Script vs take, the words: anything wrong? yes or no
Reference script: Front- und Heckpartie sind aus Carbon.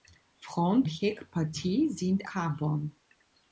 yes